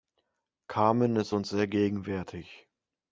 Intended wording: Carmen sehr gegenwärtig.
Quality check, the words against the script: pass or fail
fail